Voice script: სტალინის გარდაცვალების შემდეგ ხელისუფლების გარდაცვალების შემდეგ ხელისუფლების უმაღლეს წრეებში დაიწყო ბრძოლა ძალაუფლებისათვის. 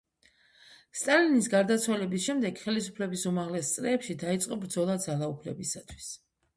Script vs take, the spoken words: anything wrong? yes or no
yes